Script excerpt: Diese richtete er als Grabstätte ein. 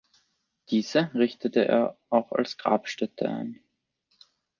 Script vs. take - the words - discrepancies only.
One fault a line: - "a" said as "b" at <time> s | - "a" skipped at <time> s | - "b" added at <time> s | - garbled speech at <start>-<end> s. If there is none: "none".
- "auch" added at 2.1 s